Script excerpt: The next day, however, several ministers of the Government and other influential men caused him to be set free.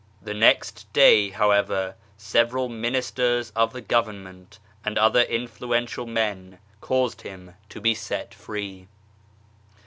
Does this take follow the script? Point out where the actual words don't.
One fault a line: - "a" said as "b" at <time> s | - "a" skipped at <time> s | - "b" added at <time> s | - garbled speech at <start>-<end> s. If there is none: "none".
none